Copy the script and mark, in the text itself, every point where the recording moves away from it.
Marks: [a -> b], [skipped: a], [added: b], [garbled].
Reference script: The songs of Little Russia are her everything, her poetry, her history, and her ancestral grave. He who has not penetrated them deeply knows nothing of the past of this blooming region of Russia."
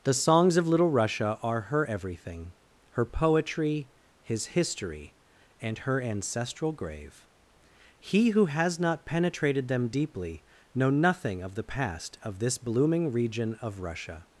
The songs of Little Russia are her everything, her poetry, [her -> his] history, and her ancestral grave. He who has not penetrated them deeply [knows -> know] nothing of the past of this blooming region of Russia."